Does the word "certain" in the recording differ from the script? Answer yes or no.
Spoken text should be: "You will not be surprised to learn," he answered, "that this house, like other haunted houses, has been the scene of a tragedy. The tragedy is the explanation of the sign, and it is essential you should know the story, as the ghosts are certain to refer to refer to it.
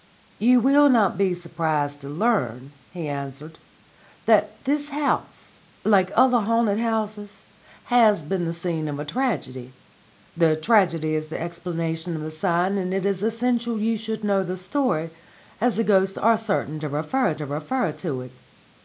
no